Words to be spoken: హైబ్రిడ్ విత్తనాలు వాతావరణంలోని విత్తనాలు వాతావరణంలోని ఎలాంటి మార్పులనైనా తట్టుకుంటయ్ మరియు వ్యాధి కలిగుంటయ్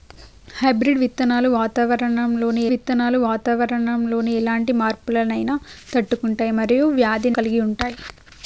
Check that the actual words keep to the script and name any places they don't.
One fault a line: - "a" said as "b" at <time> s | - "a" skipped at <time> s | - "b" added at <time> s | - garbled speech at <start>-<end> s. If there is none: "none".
none